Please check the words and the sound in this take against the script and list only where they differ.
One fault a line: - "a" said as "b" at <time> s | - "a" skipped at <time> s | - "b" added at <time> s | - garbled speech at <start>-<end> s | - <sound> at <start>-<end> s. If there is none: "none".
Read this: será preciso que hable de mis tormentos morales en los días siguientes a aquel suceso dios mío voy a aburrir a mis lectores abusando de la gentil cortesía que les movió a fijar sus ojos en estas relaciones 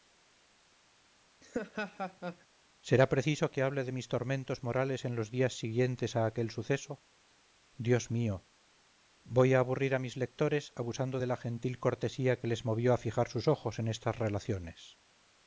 - laugh at 1.4-2.5 s